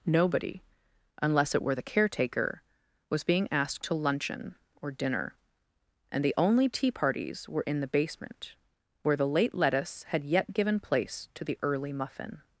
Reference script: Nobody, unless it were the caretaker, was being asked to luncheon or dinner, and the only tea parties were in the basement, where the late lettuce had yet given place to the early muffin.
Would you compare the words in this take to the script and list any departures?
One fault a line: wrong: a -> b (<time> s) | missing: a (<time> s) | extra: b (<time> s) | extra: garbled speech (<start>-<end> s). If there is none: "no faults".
no faults